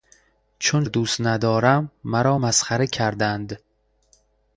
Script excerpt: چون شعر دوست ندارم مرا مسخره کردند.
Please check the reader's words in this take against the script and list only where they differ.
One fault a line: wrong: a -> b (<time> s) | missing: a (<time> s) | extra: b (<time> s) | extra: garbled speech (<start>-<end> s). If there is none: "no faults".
missing: شعر (0.8 s)